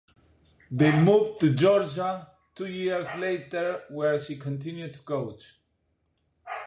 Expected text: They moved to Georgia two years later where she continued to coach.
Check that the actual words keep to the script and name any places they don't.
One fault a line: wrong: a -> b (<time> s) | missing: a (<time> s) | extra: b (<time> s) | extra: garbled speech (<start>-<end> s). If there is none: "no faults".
no faults